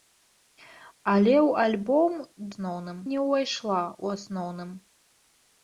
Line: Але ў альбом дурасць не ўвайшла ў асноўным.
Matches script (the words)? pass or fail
fail